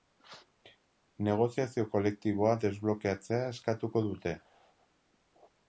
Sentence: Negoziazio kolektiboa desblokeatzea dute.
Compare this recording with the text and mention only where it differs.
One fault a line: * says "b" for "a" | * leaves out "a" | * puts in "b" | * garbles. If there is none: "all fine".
* puts in "eskatuko"